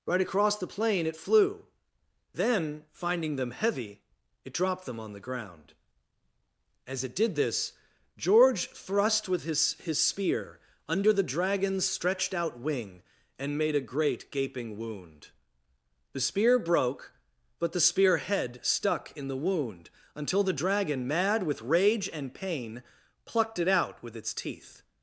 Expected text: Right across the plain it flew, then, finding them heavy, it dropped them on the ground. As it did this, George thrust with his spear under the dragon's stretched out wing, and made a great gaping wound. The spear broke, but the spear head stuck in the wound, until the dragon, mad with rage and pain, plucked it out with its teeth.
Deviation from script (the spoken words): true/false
true